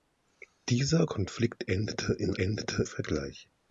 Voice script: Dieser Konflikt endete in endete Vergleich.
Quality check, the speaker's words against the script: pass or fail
pass